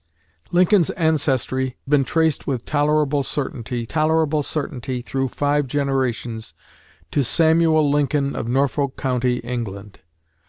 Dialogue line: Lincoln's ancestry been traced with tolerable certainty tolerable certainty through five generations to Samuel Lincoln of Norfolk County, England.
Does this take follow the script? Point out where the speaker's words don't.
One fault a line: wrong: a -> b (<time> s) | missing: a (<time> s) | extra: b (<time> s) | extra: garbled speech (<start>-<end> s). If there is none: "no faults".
no faults